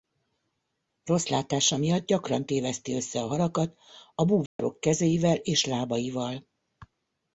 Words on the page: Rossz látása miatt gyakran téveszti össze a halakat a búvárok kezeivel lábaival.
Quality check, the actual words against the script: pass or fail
fail